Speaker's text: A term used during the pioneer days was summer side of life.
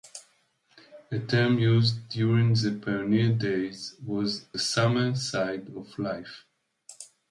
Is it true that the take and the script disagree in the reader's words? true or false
false